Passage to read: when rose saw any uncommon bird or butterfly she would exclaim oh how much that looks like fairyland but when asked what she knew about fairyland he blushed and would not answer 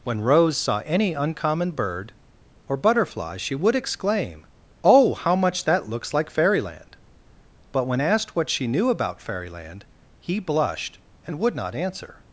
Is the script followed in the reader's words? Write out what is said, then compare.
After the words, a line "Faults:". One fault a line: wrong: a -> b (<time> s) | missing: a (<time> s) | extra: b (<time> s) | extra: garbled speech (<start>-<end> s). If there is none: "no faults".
when rose saw any uncommon bird or butterfly she would exclaim oh how much that looks like fairyland but when asked what she knew about fairyland he blushed and would not answer
Faults:
no faults